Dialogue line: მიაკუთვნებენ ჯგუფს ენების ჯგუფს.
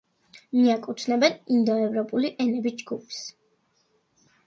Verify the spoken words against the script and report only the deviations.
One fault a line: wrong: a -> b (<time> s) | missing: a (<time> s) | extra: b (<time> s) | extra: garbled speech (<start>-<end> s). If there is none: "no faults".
wrong: ჯგუფს -> ინდოევროპული (1.6 s)